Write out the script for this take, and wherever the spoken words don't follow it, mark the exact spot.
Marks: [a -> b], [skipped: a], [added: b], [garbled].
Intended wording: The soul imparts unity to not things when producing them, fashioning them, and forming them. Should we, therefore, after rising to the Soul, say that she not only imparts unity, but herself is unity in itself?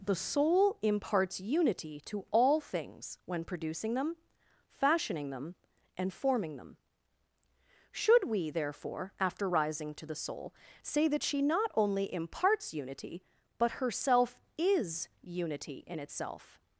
The soul imparts unity to [not -> all] things when producing them, fashioning them, and forming them. Should we, therefore, after rising to the Soul, say that she not only imparts unity, but herself is unity in itself?